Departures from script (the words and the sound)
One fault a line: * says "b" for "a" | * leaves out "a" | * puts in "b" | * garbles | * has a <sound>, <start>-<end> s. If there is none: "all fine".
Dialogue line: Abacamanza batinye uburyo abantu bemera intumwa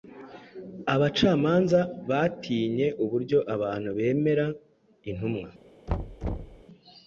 * has a thud, 5.9-6.6 s